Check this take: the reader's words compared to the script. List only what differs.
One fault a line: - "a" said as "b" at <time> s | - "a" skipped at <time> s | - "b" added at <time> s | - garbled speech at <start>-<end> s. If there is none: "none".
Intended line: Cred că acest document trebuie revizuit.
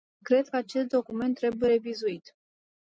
none